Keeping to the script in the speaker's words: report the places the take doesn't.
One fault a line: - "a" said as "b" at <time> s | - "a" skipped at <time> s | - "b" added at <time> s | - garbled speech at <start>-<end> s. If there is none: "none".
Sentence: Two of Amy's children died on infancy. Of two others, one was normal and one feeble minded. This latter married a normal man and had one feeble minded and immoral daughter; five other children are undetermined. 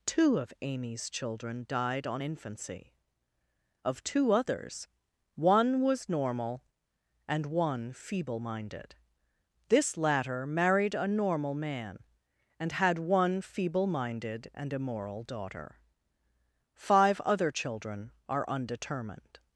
none